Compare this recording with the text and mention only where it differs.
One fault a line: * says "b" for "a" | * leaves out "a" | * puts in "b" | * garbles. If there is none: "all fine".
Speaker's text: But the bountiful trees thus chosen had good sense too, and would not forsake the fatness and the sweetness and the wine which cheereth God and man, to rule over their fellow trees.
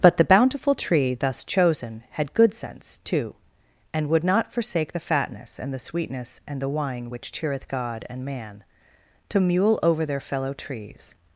* says "tree" for "trees"
* says "mule" for "rule"